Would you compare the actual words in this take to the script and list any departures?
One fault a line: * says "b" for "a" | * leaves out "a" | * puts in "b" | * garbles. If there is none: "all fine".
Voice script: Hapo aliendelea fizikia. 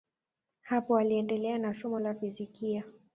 * puts in "na somo la"